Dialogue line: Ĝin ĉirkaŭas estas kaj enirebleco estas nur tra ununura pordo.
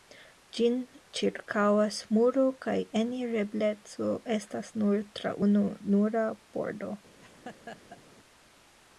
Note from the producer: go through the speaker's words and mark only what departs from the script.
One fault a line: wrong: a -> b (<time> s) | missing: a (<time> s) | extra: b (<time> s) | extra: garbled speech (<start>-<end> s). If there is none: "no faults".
wrong: estas -> muro (2.2 s)